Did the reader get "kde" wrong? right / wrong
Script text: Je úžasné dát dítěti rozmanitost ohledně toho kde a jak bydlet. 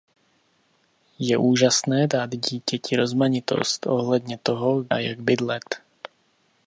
wrong